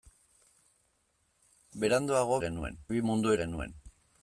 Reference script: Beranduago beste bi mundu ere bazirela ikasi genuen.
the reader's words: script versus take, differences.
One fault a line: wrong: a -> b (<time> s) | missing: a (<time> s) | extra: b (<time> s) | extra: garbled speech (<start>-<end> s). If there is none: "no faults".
wrong: beste -> genuen (2.4 s)
missing: ere bazirela ikasi (3.3 s)